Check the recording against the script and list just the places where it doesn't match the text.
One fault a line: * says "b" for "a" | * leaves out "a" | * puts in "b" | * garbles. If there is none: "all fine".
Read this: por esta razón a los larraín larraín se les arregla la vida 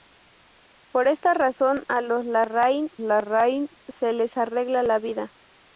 all fine